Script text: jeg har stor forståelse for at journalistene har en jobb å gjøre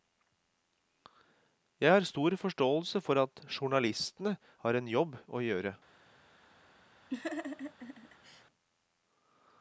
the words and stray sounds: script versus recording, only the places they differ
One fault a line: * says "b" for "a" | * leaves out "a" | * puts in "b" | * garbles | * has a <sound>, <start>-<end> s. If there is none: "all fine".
* has a laugh, 7.1-8.4 s